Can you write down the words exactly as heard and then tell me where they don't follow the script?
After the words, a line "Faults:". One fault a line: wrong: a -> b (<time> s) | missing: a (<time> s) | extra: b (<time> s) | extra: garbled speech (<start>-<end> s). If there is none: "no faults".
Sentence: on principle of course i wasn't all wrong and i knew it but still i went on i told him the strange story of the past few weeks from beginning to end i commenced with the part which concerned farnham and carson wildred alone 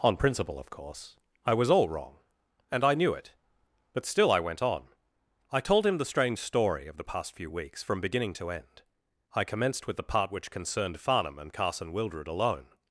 on principle of course i was all wrong and i knew it but still i went on i told him the strange story of the past few weeks from beginning to end i commenced with the part which concerned farnham and carson wildred alone
Faults:
wrong: wasn't -> was (1.5 s)